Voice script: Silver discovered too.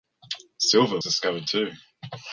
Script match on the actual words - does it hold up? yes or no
yes